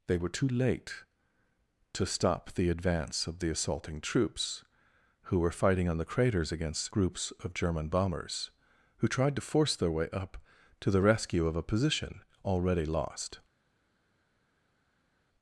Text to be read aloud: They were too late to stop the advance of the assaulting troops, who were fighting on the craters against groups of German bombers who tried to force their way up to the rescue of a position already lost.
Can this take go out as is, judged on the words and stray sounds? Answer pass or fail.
pass